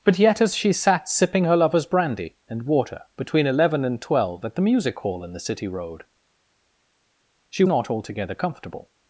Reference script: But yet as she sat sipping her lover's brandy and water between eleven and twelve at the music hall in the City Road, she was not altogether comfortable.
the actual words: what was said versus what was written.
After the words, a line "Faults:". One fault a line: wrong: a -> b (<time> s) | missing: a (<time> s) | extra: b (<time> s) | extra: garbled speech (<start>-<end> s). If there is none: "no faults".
But yet as she sat sipping her lover's brandy and water between eleven and twelve at the music hall in the City Road, she not altogether comfortable.
Faults:
missing: was (7.6 s)